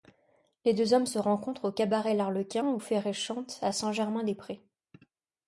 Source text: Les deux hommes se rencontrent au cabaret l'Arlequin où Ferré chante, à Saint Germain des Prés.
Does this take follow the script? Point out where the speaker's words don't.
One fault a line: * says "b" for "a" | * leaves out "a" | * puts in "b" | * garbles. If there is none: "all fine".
all fine